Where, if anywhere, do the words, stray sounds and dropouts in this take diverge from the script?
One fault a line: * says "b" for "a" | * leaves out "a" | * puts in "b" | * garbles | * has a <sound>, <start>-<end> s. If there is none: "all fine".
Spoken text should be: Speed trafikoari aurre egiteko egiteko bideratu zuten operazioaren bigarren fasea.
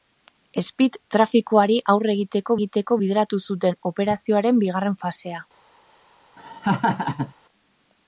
* has a laugh, 6.4-7.3 s